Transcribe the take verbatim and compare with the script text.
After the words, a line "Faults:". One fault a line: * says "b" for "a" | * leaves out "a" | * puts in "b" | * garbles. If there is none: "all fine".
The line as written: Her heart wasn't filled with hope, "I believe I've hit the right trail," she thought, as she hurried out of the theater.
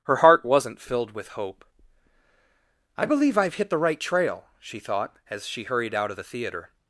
Her heart wasn't filled with hope, "I believe I've hit the right trail," she thought, as she hurried out of the theater.
Faults:
all fine